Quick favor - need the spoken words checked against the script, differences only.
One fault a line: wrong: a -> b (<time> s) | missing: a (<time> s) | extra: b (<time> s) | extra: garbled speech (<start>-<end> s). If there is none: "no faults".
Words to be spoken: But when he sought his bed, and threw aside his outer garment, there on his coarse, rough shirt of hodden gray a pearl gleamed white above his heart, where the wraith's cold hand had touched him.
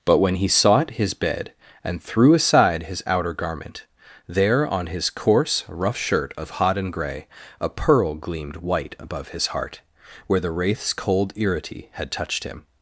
wrong: hand -> irity (11.4 s)